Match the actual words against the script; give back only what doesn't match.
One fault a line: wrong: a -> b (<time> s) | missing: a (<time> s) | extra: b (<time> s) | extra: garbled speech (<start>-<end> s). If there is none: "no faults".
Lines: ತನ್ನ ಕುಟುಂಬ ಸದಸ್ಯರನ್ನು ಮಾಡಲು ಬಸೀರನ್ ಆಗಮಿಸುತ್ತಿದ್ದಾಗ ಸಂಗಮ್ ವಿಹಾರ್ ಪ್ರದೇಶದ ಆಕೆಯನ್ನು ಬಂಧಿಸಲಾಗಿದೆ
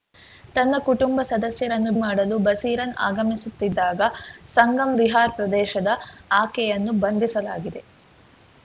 no faults